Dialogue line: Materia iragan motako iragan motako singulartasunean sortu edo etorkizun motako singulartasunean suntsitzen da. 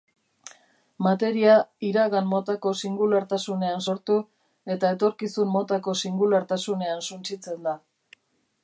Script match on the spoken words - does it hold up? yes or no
no